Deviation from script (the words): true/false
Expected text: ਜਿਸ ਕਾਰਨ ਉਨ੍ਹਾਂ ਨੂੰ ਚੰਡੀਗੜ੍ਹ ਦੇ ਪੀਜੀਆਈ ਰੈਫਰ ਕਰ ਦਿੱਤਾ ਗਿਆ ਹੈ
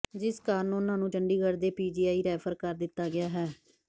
false